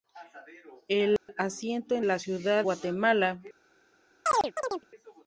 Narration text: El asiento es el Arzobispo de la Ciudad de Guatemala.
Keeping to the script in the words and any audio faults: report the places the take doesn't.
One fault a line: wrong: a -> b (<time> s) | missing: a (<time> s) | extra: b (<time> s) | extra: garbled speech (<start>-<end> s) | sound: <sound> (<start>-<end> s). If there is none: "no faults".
sound: dropout (1.2-1.3 s)
missing: el Arzobispo de (2.0 s)
missing: de (2.6 s)
sound: chirp (4.3-4.9 s)